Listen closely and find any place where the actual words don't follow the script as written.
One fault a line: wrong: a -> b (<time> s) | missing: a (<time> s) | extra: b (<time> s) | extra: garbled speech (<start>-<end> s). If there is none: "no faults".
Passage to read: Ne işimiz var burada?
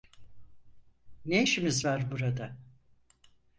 no faults